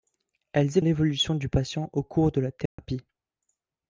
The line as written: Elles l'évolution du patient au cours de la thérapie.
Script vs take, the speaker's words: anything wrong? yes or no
no